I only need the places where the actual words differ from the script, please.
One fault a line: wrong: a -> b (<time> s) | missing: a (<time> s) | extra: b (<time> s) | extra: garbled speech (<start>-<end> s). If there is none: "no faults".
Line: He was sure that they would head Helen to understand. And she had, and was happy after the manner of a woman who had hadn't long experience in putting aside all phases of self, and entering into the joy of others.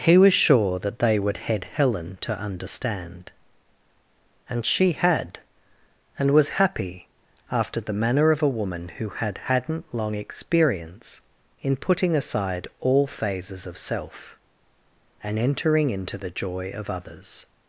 no faults